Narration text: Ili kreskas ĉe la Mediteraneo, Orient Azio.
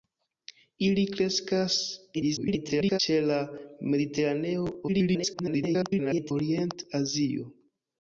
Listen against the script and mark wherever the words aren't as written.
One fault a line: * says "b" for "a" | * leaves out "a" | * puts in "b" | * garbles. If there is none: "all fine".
* garbles
* garbles